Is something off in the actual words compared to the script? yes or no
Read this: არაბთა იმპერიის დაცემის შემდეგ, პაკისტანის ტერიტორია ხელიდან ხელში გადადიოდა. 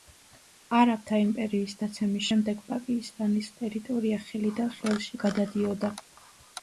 no